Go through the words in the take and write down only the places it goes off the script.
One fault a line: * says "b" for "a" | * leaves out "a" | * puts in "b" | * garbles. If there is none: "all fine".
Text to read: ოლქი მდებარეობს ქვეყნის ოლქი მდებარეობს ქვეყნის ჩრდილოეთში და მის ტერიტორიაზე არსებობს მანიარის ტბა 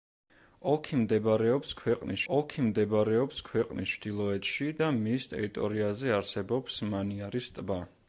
all fine